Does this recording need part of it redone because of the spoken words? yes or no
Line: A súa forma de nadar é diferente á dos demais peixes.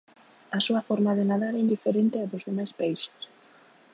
no